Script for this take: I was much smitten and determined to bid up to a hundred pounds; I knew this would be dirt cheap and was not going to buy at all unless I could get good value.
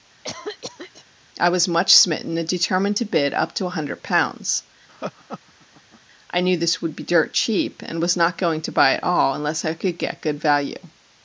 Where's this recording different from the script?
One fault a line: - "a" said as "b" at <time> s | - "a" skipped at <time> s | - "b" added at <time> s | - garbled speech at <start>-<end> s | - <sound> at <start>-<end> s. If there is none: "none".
- cough at 0.2-1.1 s
- laugh at 4.9-6.0 s